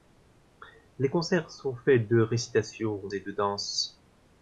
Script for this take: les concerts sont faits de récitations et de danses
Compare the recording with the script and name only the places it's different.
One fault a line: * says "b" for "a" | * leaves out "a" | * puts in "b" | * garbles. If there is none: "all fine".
all fine